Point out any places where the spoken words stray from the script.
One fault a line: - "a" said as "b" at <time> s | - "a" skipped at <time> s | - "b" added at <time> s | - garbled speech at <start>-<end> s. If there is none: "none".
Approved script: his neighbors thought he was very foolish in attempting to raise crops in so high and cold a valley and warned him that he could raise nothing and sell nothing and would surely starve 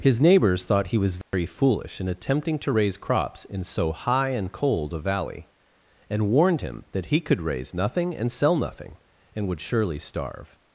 none